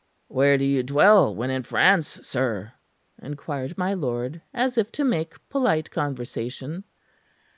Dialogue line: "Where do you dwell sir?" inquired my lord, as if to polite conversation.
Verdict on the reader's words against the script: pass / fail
fail